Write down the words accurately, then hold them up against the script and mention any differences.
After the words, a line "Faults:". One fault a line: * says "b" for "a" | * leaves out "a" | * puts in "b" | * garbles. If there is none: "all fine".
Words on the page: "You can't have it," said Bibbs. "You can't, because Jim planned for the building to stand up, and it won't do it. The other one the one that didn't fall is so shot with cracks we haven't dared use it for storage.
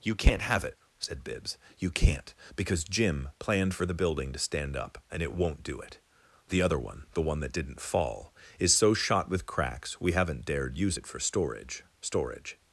"You can't have it," said Bibbs. "You can't, because Jim planned for the building to stand up, and it won't do it. The other one the one that didn't fall is so shot with cracks we haven't dared use it for storage storage.
Faults:
* puts in "storage"